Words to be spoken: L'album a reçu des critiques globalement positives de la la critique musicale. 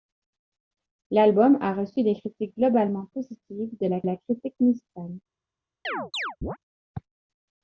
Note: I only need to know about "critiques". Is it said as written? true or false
true